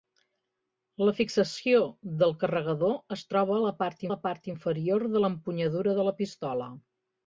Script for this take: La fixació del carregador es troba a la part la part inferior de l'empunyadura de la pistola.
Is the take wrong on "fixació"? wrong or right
right